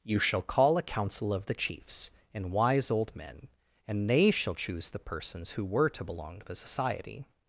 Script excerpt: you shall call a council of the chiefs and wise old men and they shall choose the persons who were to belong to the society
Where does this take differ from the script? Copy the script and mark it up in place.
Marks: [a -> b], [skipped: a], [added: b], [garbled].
you shall call a council of the chiefs and wise old men and they shall choose the persons who were to belong to the society